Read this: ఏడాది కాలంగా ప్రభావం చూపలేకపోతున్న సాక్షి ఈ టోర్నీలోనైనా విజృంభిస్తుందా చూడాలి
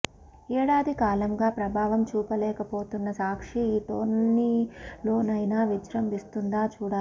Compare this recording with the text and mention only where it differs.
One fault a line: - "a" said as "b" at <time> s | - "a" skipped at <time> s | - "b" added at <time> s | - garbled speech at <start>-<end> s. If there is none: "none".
none